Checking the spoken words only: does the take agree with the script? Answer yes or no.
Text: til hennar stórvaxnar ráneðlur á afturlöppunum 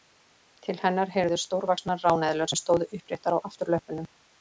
no